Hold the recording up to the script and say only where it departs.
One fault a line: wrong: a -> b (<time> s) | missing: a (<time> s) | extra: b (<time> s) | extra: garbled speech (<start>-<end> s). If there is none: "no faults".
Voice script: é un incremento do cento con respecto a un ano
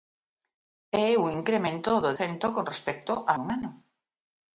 no faults